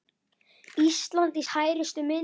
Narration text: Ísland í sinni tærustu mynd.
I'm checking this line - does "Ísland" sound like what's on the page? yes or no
yes